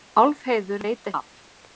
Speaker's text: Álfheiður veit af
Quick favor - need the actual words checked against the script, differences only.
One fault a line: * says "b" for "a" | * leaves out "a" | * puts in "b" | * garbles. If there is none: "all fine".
all fine